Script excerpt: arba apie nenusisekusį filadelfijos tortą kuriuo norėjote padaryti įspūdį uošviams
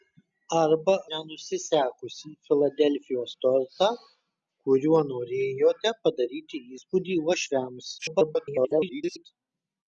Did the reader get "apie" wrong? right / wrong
wrong